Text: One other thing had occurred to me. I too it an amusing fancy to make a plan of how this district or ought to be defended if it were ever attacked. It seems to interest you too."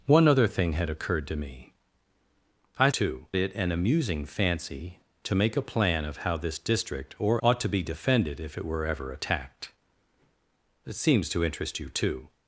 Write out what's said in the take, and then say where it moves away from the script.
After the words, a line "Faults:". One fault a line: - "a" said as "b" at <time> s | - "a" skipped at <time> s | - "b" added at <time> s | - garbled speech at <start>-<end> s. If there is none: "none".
One other thing had occurred to me. I too it an amusing fancy to make a plan of how this district or ought to be defended if it were ever attacked. It seems to interest you too."
Faults:
none